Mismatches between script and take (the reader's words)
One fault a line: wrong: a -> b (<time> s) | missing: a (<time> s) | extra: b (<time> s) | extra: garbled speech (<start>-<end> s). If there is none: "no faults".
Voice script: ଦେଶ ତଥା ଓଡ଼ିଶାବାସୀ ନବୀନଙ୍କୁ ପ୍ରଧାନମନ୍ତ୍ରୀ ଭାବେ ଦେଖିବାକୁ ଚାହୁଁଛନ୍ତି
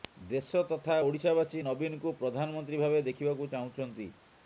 no faults